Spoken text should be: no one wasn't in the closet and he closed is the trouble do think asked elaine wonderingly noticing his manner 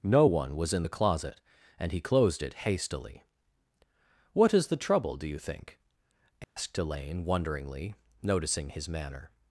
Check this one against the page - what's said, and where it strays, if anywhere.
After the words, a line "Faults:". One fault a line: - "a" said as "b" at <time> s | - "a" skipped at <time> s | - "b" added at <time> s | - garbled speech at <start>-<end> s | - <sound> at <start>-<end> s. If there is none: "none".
no one was in the closet and he closed it hastily what is the trouble do you think asked elaine wonderingly noticing his manner
Faults:
- "wasn't" said as "was" at 0.6 s
- "it hastily what" added at 2.4 s
- "you" added at 5.3 s
- dropout at 6.4-6.6 s